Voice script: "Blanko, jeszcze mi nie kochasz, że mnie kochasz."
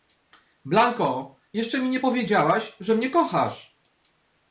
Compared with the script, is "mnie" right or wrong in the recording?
right